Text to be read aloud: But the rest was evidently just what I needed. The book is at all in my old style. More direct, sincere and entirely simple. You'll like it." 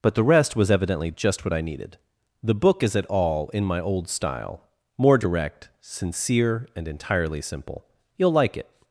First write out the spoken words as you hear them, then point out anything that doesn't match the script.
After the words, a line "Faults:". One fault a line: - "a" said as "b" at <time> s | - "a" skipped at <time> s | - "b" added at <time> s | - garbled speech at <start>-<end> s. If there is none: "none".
But the rest was evidently just what I needed. The book is at all in my old style. More direct, sincere and entirely simple. You'll like it."
Faults:
none